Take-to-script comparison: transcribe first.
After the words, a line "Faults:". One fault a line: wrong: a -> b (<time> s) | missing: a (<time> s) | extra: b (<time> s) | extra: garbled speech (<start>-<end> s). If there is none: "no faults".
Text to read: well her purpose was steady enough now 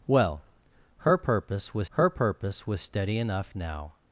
well her purpose was her purpose was steady enough now
Faults:
extra: her purpose was (1.9 s)